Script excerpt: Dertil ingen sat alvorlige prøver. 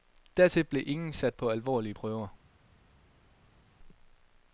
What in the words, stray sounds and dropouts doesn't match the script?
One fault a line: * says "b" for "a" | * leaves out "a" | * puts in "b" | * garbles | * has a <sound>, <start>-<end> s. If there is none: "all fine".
* puts in "blev"
* puts in "på"